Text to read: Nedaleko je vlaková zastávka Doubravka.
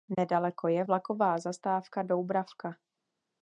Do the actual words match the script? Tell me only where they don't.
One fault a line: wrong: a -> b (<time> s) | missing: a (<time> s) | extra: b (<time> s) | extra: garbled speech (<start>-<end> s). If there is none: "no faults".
no faults